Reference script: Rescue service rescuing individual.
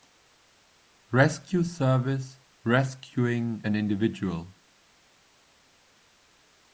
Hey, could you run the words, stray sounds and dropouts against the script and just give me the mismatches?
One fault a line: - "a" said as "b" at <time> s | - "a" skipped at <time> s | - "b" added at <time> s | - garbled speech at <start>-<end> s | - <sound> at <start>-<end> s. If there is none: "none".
- "an" added at 3.6 s